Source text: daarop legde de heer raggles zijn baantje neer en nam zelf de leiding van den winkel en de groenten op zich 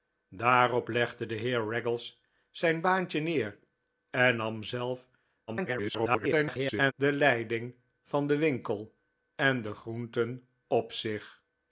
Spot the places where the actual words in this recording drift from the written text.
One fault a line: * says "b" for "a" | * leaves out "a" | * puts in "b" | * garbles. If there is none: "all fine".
* garbles